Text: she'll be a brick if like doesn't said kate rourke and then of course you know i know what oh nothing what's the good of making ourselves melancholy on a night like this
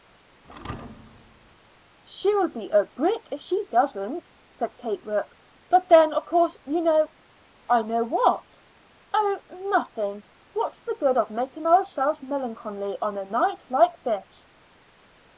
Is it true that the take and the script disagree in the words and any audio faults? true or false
true